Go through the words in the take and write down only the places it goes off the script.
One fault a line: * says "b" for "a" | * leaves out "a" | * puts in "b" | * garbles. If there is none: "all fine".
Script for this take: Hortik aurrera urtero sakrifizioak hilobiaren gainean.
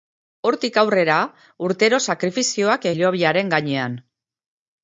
all fine